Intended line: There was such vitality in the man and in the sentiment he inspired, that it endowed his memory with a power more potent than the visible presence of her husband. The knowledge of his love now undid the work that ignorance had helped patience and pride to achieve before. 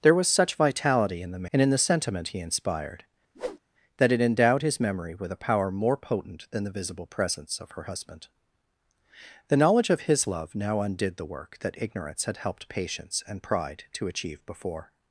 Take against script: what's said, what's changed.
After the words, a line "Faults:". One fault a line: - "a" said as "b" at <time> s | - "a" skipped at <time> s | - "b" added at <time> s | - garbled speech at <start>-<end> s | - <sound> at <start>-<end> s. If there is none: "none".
There was such vitality in the and in the sentiment he inspired, that it endowed his memory with a power more potent than the visible presence of her husband. The knowledge of his love now undid the work that ignorance had helped patience and pride to achieve before.
Faults:
- "man" skipped at 1.4 s
- whoosh at 3.3-3.6 s